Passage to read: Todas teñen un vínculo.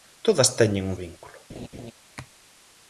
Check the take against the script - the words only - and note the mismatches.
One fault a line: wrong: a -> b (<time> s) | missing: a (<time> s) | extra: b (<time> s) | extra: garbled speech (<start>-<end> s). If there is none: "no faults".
no faults